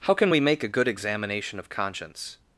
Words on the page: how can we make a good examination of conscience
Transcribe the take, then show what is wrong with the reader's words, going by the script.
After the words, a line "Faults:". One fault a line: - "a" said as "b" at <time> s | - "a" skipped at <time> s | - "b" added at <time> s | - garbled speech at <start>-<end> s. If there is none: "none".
how can we make a good examination of conscience
Faults:
none